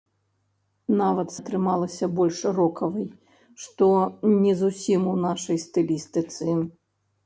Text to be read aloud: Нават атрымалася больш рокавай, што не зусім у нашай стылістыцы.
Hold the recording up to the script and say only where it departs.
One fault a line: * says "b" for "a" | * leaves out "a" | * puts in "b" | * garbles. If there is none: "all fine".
all fine